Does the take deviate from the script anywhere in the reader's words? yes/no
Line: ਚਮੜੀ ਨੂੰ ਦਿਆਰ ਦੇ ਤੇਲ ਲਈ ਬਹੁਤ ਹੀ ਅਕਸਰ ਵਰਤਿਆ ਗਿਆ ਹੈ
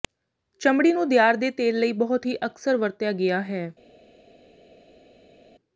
no